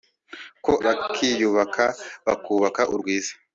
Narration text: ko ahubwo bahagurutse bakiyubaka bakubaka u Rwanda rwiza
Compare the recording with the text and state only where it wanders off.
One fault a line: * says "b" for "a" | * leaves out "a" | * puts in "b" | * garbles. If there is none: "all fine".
* leaves out "ahubwo bahagurutse"
* leaves out "Rwanda"